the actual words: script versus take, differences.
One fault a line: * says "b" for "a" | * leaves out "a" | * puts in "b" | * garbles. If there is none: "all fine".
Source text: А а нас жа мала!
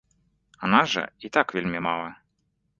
* leaves out "а"
* puts in "і так вельмі"